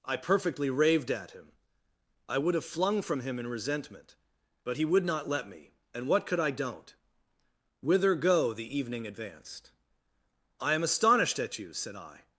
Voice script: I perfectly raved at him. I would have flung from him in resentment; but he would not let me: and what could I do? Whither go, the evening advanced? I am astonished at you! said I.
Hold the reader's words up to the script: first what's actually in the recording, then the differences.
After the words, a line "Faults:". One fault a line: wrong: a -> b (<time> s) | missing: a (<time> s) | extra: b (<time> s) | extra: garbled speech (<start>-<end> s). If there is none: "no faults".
I perfectly raved at him. I would have flung from him in resentment; but he would not let me: and what could I don't? Whither go, the evening advanced? I am astonished at you! said I.
Faults:
wrong: do -> don't (6.5 s)